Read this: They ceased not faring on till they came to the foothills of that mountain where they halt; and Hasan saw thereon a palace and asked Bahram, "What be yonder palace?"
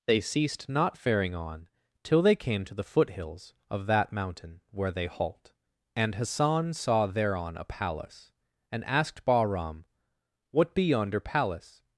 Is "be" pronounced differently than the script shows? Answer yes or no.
no